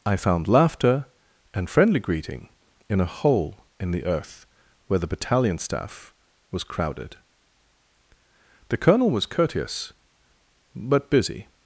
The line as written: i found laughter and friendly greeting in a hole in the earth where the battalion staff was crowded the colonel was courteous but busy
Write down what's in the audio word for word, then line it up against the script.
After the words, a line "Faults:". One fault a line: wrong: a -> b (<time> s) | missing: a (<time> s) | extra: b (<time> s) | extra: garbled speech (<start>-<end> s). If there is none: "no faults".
i found laughter and friendly greeting in a hole in the earth where the battalion staff was crowded the colonel was courteous but busy
Faults:
no faults